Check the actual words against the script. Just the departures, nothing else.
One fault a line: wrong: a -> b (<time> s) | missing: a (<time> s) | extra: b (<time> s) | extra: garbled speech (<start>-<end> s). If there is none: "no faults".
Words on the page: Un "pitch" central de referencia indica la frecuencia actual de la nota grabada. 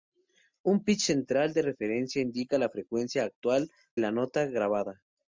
missing: de (3.7 s)